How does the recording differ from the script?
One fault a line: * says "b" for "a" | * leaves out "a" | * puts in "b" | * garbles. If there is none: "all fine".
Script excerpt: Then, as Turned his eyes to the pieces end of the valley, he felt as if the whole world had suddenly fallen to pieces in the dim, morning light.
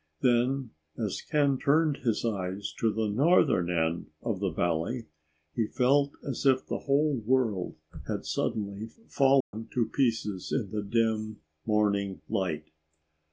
* puts in "Ken"
* says "northern" for "pieces"